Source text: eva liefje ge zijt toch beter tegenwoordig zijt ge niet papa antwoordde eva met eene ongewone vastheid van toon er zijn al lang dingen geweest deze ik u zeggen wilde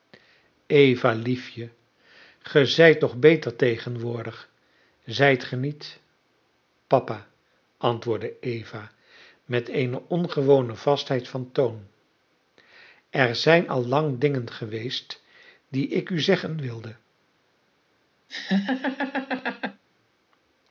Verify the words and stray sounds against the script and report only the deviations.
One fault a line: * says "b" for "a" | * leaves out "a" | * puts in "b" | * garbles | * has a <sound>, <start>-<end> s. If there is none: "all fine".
* says "die" for "deze"
* has a laugh, 18.3-19.8 s